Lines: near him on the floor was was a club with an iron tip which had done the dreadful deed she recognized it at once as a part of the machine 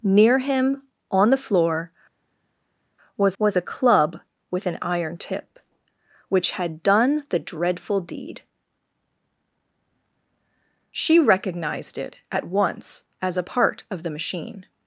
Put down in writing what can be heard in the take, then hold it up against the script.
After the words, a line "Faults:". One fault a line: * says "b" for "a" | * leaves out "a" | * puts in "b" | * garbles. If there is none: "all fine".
near him on the floor was was a club with an iron tip which had done the dreadful deed she recognized it at once as a part of the machine
Faults:
all fine